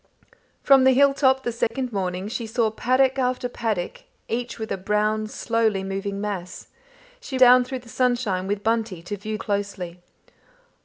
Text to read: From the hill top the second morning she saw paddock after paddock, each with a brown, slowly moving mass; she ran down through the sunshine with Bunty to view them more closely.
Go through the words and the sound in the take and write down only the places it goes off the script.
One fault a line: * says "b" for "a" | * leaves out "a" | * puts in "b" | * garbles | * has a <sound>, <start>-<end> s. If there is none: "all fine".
* has a dropout, 1.7-1.7 s
* leaves out "ran"
* leaves out "them more"